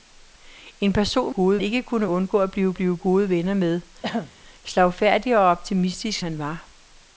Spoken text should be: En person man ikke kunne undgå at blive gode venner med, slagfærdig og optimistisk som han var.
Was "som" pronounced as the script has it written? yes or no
no